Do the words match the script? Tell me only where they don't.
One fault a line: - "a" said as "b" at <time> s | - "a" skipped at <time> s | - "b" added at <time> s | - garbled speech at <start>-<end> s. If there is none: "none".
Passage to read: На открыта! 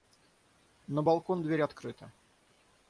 - "балкон дверь" added at 1.0 s